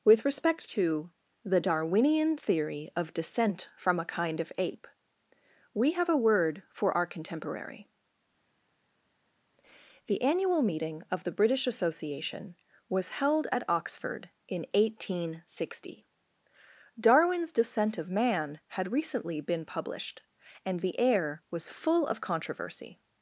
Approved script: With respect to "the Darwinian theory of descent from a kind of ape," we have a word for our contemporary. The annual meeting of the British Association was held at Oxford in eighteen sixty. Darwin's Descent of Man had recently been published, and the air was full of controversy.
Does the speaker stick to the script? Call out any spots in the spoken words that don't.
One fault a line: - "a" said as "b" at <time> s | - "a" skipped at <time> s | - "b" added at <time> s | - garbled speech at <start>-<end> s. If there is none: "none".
none